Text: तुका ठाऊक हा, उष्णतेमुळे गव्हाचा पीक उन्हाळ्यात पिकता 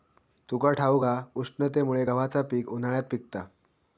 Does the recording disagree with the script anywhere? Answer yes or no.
no